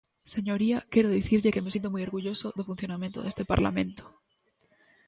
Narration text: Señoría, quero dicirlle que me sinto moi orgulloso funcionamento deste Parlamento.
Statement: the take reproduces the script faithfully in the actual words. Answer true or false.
false